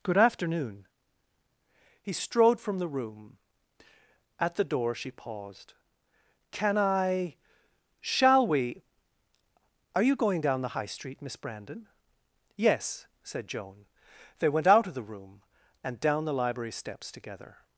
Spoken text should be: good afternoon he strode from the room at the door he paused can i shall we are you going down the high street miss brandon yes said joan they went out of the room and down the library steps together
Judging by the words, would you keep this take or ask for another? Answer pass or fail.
fail